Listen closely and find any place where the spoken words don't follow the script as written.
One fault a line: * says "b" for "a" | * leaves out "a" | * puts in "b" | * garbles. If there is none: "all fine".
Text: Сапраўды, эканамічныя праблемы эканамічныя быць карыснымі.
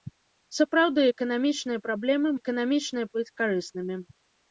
all fine